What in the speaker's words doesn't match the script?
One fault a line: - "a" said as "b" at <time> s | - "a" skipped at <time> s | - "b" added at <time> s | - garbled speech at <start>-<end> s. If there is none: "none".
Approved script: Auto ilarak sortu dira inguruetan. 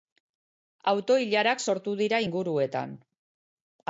none